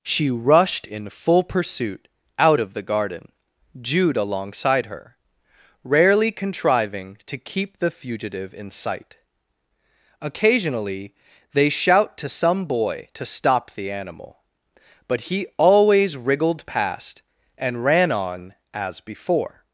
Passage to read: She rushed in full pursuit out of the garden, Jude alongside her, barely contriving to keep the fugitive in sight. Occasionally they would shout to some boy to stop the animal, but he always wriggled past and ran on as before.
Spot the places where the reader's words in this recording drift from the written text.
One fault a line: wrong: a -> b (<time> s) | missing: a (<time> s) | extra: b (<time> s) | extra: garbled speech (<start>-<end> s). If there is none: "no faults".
wrong: barely -> rarely (5.8 s)
missing: would (11.7 s)